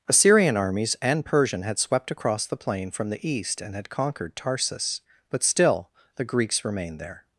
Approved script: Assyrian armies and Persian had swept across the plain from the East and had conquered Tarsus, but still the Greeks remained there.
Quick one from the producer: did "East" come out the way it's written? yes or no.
yes